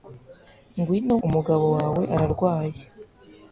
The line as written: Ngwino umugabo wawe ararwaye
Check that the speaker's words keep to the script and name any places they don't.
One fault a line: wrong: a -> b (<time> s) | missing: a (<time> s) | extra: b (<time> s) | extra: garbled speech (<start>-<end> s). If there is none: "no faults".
no faults